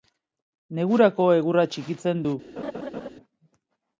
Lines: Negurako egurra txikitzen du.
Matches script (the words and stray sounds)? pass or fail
fail